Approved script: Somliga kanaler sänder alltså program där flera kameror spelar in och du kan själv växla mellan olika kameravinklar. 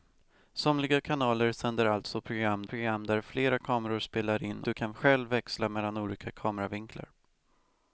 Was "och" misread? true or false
true